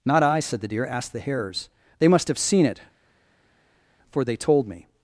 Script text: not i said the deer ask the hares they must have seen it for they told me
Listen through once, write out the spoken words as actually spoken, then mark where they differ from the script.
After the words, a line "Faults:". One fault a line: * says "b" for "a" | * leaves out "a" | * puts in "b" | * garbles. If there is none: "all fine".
not i said the deer ask the hares they must have seen it for they told me
Faults:
all fine